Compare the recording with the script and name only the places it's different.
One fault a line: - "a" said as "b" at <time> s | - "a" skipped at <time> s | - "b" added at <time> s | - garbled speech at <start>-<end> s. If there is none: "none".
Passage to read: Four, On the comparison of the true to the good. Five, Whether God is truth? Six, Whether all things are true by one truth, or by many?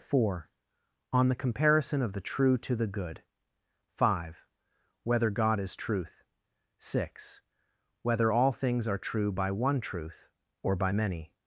none